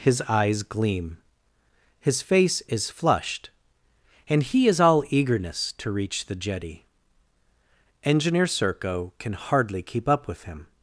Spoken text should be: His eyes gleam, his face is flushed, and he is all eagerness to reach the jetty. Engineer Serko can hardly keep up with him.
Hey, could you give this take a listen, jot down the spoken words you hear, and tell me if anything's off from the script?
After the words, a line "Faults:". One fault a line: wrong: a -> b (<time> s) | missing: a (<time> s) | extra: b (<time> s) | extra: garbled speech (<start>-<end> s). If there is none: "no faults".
His eyes gleam, his face is flushed, and he is all eagerness to reach the jetty. Engineer Serko can hardly keep up with him.
Faults:
no faults